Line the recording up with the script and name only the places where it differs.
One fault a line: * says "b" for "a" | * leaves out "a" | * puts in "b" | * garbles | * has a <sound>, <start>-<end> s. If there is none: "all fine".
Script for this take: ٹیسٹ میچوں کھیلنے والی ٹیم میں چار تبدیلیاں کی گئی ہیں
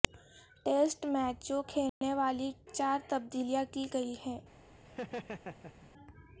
* has a dropout, 1.9-2.0 s
* leaves out "ٹیم میں"
* has a laugh, 4.8-5.9 s